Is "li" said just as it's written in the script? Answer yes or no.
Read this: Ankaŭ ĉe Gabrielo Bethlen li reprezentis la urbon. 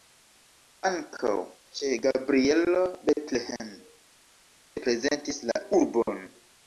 no